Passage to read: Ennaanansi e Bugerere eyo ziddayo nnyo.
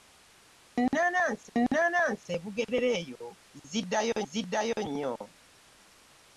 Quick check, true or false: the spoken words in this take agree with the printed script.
false